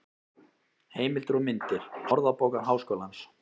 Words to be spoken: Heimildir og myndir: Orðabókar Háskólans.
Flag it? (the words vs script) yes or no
no